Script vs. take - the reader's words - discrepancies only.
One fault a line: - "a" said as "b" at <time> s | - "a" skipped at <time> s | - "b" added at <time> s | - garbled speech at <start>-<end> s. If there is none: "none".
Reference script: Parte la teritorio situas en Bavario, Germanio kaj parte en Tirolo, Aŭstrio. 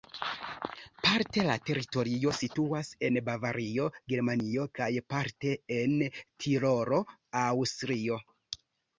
none